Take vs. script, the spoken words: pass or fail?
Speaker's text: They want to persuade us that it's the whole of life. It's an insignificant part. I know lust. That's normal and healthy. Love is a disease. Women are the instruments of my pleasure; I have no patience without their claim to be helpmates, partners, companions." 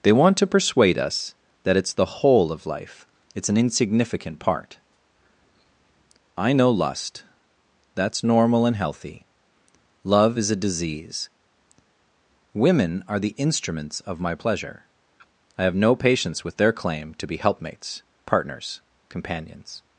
fail